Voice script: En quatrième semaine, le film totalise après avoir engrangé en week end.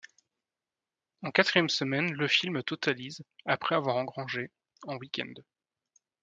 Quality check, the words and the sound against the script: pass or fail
pass